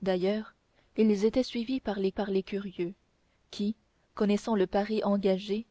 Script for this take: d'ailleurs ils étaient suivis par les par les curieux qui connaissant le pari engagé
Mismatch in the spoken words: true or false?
false